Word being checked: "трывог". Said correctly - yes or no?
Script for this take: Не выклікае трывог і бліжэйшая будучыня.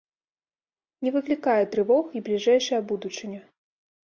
yes